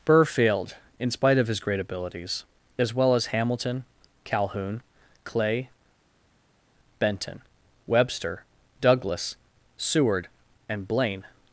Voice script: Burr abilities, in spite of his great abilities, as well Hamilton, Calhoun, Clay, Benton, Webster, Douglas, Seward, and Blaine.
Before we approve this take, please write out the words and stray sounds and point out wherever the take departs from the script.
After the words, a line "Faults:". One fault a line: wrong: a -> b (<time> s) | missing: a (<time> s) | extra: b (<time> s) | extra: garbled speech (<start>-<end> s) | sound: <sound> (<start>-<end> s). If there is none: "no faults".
Burr failed, in spite of his great abilities, as well as Hamilton, Calhoun, Clay, Benton, Webster, Douglas, Seward, and Blaine.
Faults:
wrong: abilities -> failed (0.2 s)
extra: as (3.1 s)